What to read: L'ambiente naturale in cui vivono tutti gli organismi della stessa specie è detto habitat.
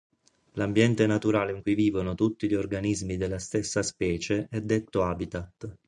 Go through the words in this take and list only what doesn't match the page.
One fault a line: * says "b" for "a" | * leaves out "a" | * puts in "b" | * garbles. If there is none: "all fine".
all fine